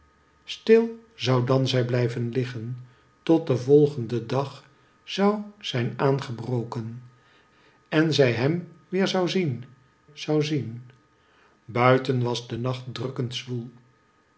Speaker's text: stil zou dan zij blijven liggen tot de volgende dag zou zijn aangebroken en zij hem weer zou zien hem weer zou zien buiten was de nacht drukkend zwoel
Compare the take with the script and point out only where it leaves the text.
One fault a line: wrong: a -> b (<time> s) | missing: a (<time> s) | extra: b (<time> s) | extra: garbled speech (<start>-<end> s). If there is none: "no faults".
missing: hem weer (9.6 s)